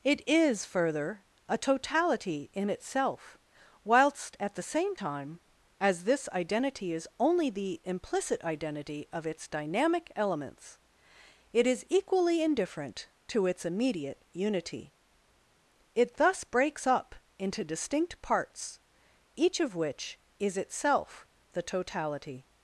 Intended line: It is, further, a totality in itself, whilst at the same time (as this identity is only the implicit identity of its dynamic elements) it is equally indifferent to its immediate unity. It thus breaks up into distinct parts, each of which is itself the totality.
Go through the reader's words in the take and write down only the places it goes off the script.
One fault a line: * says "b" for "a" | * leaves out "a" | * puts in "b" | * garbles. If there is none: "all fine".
all fine